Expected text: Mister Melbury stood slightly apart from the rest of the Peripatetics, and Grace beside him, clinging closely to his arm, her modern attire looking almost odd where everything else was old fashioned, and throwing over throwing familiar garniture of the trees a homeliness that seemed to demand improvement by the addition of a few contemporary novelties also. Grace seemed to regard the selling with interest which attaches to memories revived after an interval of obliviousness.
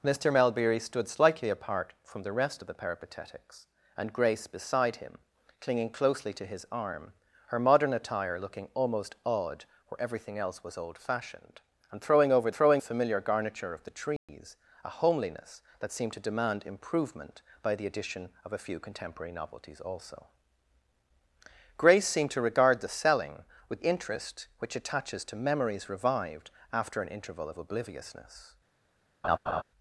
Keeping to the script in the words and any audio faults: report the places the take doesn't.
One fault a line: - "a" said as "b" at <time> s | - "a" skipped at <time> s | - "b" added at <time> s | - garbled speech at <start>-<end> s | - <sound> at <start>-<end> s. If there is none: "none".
- dropout at 14.2-14.3 s
- laugh at 29.2-29.6 s